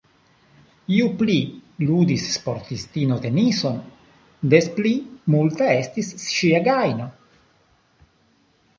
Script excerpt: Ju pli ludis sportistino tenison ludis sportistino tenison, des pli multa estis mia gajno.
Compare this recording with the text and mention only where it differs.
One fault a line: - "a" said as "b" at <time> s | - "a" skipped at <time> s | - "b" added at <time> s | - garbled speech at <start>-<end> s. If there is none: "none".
- "ludis sportistino tenison" skipped at 3.8 s
- "mia" said as "ŝia" at 6.3 s